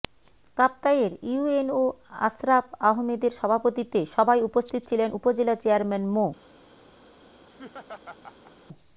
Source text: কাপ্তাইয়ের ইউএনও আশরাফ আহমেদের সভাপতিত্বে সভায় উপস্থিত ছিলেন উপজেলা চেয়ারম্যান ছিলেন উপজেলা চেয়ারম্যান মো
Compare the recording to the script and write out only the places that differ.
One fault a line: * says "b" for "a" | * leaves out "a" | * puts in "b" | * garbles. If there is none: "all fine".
* leaves out "ছিলেন উপজেলা চেয়ারম্যান"